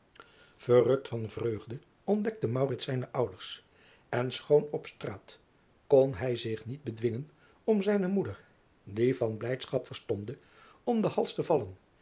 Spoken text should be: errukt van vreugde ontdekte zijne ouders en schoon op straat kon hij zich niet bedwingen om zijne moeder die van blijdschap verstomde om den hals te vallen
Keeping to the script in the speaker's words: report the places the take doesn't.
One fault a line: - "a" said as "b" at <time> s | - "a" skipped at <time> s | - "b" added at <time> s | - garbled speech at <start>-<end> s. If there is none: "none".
none